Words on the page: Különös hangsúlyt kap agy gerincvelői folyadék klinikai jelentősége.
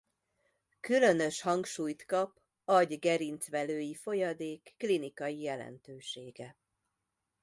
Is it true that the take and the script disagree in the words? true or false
false